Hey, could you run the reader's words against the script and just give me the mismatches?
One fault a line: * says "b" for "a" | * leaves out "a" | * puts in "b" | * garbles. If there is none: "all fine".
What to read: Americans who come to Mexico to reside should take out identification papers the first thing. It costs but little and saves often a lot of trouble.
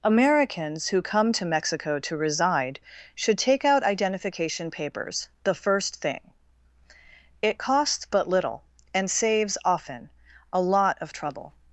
all fine